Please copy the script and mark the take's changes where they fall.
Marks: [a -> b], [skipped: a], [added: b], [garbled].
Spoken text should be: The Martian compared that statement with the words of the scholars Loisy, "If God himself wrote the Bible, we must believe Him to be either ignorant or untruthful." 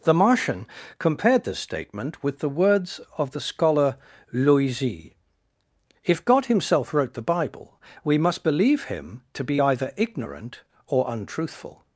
The Martian compared [that -> this] statement with the words of the [scholars -> scholar] Loisy, "If God himself wrote the Bible, we must believe Him to be either ignorant or untruthful."